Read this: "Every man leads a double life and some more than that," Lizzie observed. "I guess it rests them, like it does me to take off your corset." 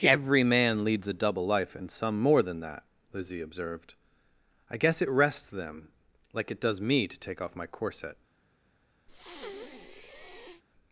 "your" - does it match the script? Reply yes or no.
no